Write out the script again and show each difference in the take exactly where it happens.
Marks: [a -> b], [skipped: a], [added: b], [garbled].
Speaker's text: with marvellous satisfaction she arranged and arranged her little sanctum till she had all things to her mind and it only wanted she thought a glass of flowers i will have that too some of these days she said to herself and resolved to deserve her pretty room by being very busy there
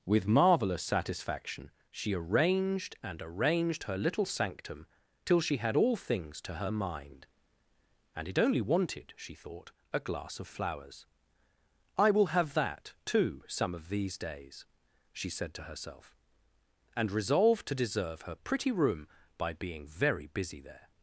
with marvellous satisfaction she arranged and arranged her little sanctum till she had all things to her mind and it only wanted she thought a glass of flowers i will have that too some of these days she said to herself and resolved to deserve her pretty room by being very busy there